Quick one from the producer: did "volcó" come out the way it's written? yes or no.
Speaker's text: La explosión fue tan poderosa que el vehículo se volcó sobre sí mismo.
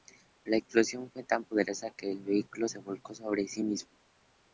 yes